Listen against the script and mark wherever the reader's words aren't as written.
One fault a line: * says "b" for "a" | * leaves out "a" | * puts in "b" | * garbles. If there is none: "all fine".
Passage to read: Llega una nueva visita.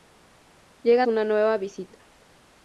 all fine